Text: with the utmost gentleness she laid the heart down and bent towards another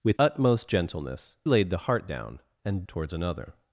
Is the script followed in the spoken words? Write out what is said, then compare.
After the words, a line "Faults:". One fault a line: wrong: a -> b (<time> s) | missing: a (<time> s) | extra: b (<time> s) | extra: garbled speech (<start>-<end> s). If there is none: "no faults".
with utmost gentleness laid the heart down and towards another
Faults:
missing: the (0.2 s)
missing: she (1.4 s)
missing: bent (2.8 s)